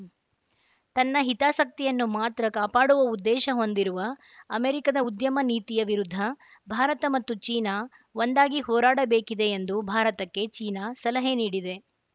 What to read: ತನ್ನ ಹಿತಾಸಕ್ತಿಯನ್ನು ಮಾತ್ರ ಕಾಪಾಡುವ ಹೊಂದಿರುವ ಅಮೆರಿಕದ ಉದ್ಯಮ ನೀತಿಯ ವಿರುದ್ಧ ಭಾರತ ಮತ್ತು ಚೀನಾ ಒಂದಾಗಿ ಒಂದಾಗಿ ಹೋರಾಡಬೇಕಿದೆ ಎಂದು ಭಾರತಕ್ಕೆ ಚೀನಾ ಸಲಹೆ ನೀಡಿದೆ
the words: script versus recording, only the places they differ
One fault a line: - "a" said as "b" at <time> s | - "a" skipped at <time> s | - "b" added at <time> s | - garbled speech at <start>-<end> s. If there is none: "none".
- "ಉದ್ದೇಶ" added at 3.1 s
- "ಒಂದಾಗಿ" skipped at 8.6 s